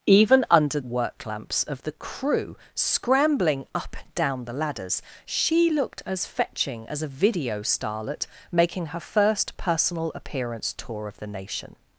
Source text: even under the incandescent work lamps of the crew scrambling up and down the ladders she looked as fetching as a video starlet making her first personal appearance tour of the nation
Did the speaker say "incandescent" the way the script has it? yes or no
no